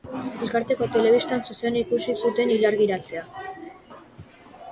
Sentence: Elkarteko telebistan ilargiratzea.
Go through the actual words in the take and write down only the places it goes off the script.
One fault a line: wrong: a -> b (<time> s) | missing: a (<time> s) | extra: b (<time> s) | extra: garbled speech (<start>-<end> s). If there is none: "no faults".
extra: zuzenean ikusi zuten (1.5 s)